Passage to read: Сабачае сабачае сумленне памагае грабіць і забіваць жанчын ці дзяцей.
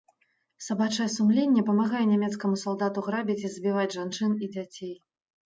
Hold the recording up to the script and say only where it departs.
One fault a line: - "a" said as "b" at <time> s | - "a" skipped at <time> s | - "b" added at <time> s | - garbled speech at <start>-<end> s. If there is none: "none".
- "сабачае" skipped at 1.1 s
- "нямецкаму салдату" added at 2.1 s
- "ці" said as "і" at 4.4 s